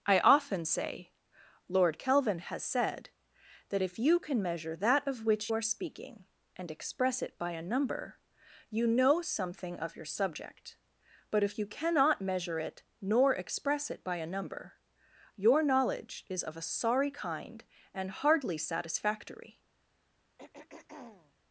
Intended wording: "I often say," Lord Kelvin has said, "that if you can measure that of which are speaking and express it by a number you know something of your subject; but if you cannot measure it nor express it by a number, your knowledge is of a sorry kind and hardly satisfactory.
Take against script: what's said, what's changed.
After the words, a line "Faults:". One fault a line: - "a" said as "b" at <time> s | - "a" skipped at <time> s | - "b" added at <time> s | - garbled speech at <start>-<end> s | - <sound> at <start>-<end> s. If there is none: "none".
"I often say," Lord Kelvin has said, "that if you can measure that of which are speaking and express it by a number you know something of your subject; but if you cannot measure it nor express it by a number, your knowledge is of a sorry kind and hardly satisfactory.
Faults:
- throat clearing at 20.4-21.4 s